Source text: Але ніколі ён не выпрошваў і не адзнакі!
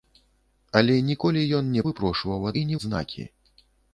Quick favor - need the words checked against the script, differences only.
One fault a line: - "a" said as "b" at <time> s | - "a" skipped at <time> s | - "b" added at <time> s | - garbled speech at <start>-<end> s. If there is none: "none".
none